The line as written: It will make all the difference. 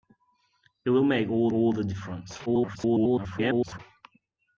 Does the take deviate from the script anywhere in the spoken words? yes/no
yes